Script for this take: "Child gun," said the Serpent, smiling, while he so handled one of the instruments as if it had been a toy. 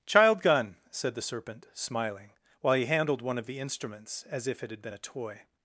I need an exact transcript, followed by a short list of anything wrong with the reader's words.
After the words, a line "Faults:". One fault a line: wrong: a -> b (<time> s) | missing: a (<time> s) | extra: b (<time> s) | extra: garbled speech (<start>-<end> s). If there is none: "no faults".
"Child gun," said the Serpent, smiling, while he handled one of the instruments as if it had been a toy.
Faults:
missing: so (2.8 s)